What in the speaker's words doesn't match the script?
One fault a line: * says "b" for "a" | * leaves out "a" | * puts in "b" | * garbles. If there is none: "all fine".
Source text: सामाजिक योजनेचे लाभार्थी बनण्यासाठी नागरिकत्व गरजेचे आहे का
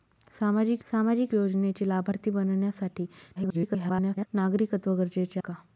* puts in "सामाजिक"
* garbles
* leaves out "आहे"